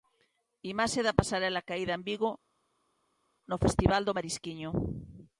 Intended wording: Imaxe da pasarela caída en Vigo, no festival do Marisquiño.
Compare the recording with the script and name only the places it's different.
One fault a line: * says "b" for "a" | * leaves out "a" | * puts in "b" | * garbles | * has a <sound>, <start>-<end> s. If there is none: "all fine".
all fine